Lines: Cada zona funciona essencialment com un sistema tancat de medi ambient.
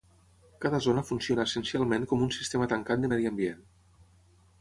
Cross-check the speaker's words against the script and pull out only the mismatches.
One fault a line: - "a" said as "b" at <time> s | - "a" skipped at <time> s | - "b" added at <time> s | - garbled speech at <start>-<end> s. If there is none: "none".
none